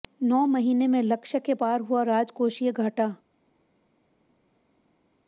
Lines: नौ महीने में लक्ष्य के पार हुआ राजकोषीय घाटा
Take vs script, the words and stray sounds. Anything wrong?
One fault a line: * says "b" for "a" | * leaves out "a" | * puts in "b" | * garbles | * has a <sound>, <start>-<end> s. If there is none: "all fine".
all fine